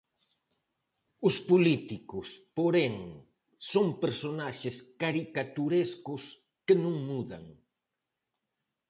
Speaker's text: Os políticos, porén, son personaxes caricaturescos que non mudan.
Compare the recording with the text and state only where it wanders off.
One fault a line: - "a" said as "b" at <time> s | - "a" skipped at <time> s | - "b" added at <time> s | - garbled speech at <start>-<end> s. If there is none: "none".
none